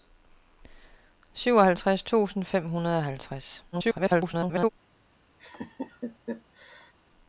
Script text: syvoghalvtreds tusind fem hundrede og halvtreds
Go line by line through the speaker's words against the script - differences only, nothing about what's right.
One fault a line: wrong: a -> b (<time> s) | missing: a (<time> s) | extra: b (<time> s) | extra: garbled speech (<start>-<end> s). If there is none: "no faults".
extra: garbled speech (3.7-4.7 s)